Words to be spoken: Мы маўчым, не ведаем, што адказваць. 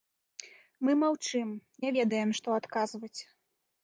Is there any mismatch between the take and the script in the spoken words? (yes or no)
no